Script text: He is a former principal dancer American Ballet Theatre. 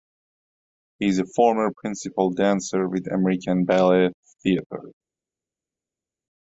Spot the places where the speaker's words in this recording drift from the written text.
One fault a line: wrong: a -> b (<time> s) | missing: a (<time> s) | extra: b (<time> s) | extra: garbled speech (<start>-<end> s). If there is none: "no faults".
extra: with (2.9 s)